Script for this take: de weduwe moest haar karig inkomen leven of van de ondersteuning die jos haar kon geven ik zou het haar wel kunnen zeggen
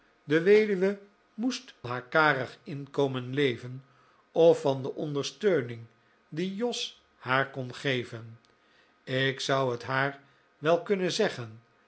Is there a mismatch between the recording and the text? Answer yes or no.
no